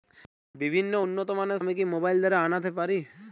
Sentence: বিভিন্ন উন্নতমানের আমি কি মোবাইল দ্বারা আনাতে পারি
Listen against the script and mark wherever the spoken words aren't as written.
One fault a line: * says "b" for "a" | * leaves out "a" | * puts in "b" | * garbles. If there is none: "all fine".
all fine